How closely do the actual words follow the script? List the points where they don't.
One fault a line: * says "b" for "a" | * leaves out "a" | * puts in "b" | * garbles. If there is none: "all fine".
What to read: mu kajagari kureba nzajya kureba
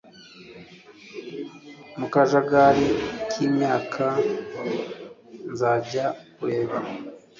* says "kimyaka" for "kureba"